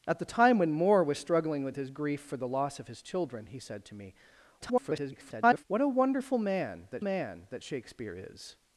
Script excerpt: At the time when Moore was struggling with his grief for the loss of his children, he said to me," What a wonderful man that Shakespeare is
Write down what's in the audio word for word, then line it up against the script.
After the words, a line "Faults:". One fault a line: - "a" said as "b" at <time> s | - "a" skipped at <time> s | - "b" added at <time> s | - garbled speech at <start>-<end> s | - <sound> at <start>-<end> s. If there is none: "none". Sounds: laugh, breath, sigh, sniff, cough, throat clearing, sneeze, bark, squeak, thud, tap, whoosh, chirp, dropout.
At the time when Moore was struggling with his grief for the loss of his children, he said to me," [garbled] What a wonderful man that man that Shakespeare is
Faults:
- garbled speech at 4.6-5.6 s
- "man that" added at 7.0 s